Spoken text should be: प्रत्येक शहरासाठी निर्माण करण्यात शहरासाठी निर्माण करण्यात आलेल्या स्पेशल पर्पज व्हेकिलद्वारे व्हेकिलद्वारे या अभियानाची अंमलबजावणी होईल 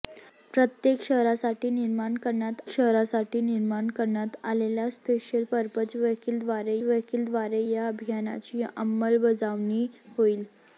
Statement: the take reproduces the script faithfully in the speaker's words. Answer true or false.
true